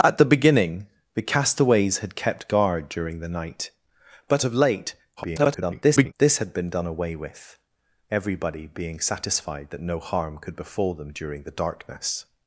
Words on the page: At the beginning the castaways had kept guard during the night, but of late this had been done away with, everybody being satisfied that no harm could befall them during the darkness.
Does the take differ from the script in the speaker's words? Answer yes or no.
yes